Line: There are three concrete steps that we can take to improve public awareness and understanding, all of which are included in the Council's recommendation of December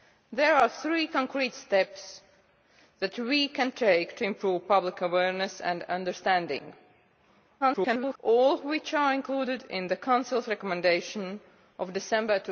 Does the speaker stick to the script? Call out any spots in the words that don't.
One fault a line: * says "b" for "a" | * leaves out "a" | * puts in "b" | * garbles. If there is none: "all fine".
* garbles